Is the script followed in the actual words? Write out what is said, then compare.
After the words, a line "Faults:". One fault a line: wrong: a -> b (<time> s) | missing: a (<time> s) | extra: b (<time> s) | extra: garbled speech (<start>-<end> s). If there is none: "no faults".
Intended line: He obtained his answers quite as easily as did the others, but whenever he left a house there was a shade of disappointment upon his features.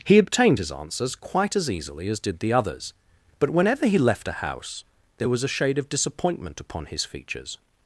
He obtained his answers quite as easily as did the others, but whenever he left a house there was a shade of disappointment upon his features.
Faults:
no faults